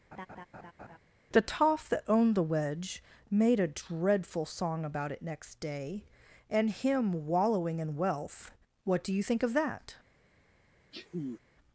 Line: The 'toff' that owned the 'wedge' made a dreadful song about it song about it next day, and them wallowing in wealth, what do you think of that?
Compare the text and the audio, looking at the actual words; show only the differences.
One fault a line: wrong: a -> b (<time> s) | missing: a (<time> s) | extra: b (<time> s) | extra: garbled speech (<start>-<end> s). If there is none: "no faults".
missing: song about it (5.2 s)
wrong: them -> him (6.7 s)